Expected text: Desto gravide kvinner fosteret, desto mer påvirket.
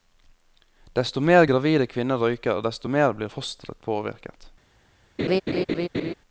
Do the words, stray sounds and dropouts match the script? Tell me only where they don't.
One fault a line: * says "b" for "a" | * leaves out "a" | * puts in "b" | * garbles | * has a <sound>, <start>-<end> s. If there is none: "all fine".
* puts in "mer"
* says "røyker" for "fosteret"
* puts in "blir fosteret"
* has a laugh, 5.2-6.1 s